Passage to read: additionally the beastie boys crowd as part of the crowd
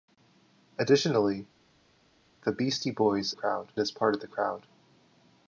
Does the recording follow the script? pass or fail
pass